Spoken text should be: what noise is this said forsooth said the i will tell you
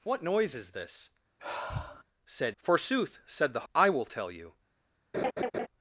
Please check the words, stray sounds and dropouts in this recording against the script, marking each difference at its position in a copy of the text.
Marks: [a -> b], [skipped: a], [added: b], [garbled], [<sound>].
what noise is this [sigh] said forsooth said the i will tell you [laugh]